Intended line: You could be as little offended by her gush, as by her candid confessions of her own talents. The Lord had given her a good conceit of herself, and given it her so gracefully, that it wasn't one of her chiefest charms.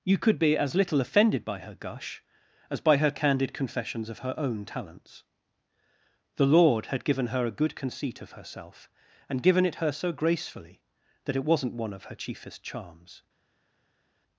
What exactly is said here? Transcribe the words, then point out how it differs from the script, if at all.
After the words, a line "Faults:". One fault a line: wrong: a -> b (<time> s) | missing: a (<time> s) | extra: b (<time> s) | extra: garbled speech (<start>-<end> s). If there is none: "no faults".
You could be as little offended by her gush, as by her candid confessions of her own talents. The Lord had given her a good conceit of herself, and given it her so gracefully, that it wasn't one of her chiefest charms.
Faults:
no faults